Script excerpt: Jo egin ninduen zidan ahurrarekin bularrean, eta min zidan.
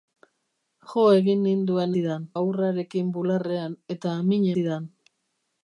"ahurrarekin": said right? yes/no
yes